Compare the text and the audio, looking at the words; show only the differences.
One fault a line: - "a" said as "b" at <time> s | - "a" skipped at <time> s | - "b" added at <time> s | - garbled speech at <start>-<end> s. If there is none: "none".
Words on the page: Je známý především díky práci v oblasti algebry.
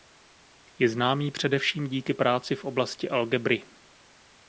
none